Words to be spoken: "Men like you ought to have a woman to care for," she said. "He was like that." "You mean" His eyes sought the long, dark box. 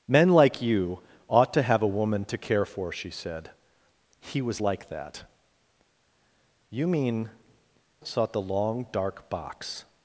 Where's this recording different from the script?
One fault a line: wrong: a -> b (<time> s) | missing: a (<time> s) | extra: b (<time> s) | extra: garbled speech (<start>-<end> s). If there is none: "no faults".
missing: His eyes (7.3 s)